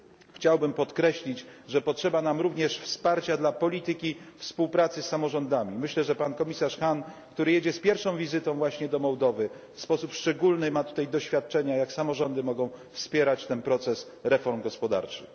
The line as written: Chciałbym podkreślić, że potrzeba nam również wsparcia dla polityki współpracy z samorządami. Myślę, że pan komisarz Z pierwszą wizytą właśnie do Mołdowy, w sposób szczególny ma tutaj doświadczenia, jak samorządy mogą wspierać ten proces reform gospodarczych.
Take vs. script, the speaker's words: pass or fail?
fail